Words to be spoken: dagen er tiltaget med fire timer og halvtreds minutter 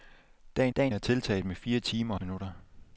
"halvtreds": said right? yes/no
no